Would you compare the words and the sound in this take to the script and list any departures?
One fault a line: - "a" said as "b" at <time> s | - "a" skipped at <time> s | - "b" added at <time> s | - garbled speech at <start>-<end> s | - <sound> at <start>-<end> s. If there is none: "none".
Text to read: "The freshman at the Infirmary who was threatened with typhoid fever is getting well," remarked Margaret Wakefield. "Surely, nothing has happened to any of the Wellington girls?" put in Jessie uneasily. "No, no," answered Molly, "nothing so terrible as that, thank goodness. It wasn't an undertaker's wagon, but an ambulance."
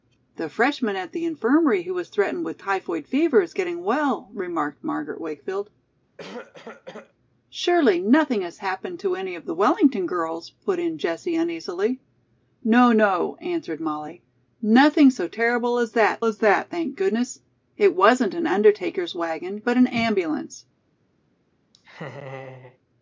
- cough at 6.2-7.1 s
- "as that" added at 16.2 s
- laugh at 21.7-22.8 s